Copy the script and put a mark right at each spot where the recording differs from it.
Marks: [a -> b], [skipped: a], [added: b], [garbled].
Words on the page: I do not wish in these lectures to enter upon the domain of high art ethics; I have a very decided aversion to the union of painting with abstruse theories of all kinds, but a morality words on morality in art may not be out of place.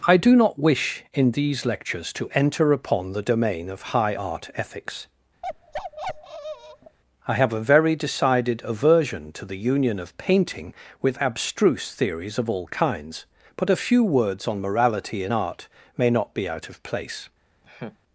I do not wish in these lectures to enter upon the domain of high art ethics; I have a very decided aversion to the union of painting with abstruse theories of all kinds, but a [morality -> few] words on morality in art may not be out of place.